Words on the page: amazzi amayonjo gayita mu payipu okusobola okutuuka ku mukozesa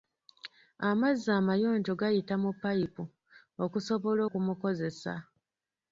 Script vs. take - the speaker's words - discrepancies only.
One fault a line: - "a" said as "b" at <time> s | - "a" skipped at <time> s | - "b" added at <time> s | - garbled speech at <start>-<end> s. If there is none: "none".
- "okutuuka" skipped at 4.2 s